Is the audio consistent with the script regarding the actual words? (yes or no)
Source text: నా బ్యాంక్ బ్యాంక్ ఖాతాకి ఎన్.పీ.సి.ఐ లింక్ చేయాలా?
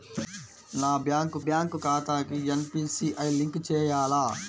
yes